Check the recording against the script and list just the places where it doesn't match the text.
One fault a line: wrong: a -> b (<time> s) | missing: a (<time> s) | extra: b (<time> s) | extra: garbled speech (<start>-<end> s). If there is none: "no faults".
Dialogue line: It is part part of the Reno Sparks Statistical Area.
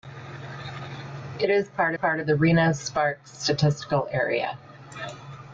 no faults